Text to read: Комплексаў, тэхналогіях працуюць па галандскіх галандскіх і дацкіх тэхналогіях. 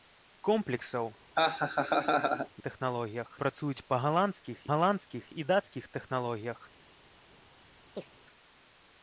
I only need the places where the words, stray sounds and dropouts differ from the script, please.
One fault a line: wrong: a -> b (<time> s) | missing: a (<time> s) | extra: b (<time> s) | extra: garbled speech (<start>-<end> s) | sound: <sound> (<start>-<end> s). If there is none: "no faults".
sound: laugh (1.3-2.5 s)
sound: chirp (7.9-8.1 s)